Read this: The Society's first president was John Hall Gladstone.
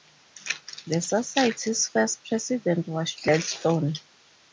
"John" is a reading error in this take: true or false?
true